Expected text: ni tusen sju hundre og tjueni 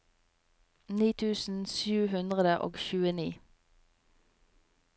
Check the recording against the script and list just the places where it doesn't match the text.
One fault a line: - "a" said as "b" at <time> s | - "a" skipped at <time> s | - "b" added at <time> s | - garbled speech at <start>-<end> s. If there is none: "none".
none